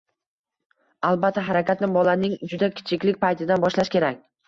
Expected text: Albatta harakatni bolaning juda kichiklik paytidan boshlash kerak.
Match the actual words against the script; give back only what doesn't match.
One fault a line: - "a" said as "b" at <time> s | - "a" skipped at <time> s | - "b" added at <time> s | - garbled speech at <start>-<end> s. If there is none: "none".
none